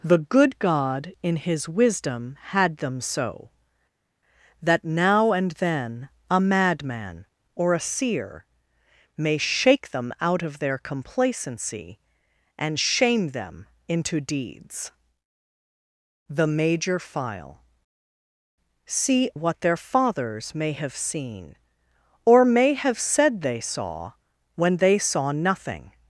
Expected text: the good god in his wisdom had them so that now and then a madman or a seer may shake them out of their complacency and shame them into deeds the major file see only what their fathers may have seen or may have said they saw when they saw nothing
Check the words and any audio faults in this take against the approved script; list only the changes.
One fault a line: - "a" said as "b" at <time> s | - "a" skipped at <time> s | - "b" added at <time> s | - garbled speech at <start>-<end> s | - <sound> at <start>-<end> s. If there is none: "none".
- "only" skipped at 19.3 s